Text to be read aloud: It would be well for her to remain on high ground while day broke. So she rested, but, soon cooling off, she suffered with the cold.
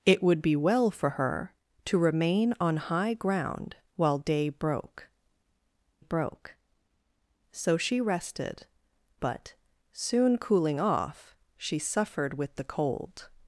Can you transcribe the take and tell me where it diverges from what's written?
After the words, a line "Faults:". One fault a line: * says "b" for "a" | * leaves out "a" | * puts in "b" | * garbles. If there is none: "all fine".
It would be well for her to remain on high ground while day broke broke. So she rested, but, soon cooling off, she suffered with the cold.
Faults:
* puts in "broke"